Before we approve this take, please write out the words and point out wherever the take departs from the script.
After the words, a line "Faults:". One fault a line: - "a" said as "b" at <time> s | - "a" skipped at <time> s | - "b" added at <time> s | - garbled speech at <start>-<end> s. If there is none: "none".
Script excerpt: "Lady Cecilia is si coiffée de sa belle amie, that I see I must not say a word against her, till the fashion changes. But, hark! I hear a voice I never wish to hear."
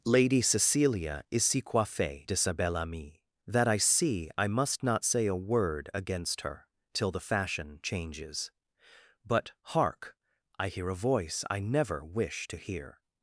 "Lady Cecilia is si coiffée de sa belle amie, that I see I must not say a word against her, till the fashion changes. But, hark! I hear a voice I never wish to hear."
Faults:
none